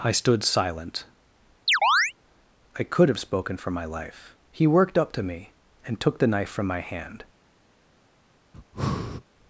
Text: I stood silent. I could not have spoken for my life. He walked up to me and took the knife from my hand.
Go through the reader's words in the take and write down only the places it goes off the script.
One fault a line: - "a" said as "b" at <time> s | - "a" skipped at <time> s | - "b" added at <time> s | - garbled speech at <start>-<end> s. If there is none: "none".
- "not" skipped at 3.1 s
- "walked" said as "worked" at 4.7 s